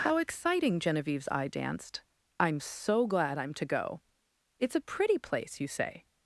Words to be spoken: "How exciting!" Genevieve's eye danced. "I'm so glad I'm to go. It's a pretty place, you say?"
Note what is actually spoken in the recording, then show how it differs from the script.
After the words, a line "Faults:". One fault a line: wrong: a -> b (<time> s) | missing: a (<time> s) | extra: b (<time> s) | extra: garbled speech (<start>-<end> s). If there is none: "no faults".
"How exciting!" Genevieve's eye danced. "I'm so glad I'm to go. It's a pretty place, you say?"
Faults:
no faults